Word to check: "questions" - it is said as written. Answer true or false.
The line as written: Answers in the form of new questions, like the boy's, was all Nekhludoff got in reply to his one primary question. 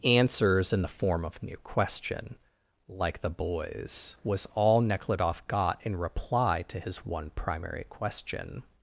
false